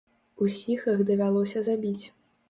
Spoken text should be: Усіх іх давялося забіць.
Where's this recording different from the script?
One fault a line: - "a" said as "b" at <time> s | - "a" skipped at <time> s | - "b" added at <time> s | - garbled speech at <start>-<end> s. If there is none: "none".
none